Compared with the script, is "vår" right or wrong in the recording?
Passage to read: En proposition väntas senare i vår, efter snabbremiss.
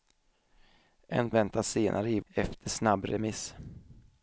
wrong